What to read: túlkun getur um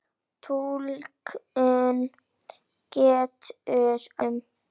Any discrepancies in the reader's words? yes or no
no